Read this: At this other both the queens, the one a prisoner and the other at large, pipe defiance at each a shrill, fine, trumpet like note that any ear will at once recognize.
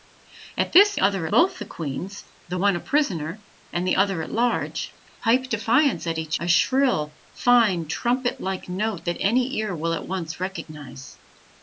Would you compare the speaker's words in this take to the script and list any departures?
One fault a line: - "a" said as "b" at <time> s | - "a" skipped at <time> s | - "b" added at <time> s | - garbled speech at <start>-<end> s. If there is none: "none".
none